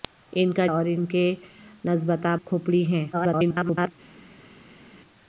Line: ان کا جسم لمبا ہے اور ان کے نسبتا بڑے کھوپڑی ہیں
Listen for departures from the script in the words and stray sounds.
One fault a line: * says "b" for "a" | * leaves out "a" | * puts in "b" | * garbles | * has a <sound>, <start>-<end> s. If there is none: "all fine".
* leaves out "جسم لمبا ہے"
* leaves out "بڑے"
* garbles